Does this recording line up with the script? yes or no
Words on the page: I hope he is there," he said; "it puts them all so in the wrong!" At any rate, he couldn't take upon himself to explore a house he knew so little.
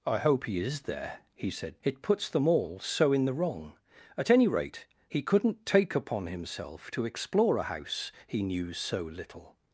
yes